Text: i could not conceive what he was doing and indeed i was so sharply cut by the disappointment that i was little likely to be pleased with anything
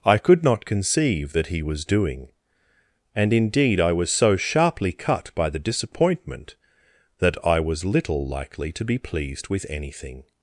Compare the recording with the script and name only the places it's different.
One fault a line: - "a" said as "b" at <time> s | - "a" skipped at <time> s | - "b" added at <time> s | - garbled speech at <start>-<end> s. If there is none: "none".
- "what" said as "that" at 1.3 s